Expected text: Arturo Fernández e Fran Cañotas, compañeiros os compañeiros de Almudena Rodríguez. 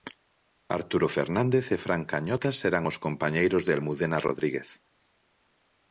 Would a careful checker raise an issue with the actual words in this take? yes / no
yes